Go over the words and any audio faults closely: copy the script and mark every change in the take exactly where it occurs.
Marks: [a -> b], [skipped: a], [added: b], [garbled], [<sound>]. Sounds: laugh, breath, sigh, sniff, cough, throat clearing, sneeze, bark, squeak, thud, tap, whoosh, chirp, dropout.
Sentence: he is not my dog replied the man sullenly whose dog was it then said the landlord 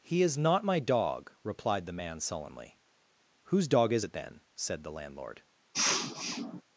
he is not my dog replied the man sullenly whose dog [was -> is] it then said the landlord [sniff]